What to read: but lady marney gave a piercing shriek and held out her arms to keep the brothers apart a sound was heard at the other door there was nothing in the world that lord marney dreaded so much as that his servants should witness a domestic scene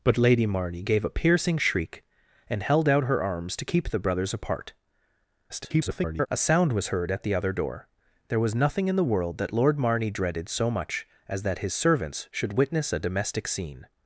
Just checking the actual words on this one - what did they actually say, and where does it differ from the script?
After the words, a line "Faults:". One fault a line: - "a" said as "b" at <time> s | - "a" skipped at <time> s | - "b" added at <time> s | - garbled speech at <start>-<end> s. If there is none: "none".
but lady marney gave a piercing shriek and held out her arms to keep the brothers apart [garbled] a sound was heard at the other door there was nothing in the world that lord marney dreaded so much as that his servants should witness a domestic scene
Faults:
- garbled speech at 5.5-6.3 s